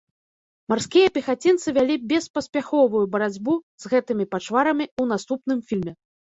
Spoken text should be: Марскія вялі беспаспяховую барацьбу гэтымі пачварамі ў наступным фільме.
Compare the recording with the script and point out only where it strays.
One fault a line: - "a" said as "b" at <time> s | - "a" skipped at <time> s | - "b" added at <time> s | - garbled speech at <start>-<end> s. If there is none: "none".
- "пехацінцы" added at 1.2 s
- "з" added at 3.9 s